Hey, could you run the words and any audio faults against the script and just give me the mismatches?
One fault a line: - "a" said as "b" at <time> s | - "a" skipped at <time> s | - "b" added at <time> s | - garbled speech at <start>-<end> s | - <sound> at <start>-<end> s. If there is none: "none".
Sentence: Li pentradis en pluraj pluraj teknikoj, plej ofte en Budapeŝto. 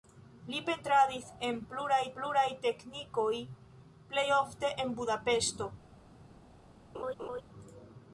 - laugh at 6.9-7.4 s